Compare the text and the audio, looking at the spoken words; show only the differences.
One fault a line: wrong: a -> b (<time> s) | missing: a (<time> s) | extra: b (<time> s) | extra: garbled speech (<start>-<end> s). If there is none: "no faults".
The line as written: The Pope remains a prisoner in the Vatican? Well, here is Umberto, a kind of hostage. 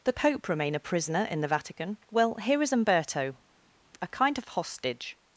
wrong: remains -> remain (0.5 s)